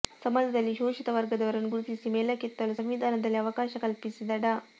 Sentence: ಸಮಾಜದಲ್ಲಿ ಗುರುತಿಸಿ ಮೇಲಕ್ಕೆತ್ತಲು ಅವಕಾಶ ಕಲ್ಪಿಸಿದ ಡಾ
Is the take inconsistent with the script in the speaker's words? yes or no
yes